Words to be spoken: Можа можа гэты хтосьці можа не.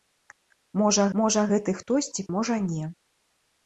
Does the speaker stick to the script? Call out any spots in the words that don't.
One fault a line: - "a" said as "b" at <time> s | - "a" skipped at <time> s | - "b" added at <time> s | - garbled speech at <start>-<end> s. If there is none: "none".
none